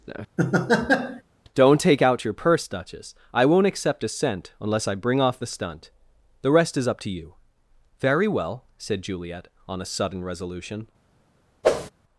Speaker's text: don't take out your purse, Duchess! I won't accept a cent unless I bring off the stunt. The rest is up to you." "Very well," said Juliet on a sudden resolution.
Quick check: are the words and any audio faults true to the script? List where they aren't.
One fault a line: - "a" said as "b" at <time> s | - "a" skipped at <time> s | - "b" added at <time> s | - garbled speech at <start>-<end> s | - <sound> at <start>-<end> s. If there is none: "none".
- laugh at 0.4-1.2 s
- whoosh at 11.6-11.9 s